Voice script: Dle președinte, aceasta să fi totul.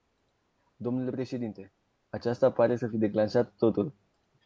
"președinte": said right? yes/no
yes